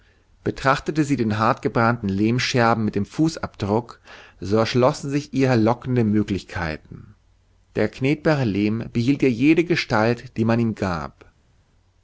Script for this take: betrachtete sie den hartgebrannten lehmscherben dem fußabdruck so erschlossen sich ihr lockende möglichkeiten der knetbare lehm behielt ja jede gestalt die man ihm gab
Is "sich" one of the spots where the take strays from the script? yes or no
no